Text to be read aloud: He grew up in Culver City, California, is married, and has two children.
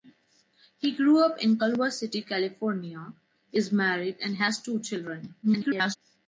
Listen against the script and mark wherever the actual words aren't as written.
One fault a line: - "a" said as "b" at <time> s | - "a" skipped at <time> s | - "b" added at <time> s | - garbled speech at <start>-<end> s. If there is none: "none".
- garbled speech at 5.4-6.0 s